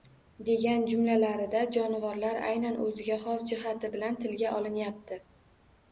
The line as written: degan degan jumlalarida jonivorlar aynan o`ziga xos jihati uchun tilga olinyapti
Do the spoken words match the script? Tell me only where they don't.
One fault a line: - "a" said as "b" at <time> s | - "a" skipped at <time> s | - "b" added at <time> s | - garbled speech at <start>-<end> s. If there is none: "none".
- "degan" skipped at 0.8 s
- "uchun" said as "bilan" at 4.0 s